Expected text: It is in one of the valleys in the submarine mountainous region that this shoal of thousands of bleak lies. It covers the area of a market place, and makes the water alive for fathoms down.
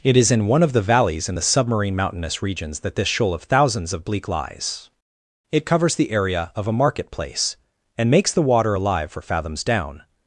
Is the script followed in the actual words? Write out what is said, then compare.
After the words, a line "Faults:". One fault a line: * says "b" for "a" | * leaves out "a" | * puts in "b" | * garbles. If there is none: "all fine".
It is in one of the valleys in the submarine mountainous regions that this shoal of thousands of bleak lies. It covers the area of a market place, and makes the water alive for fathoms down.
Faults:
* says "regions" for "region"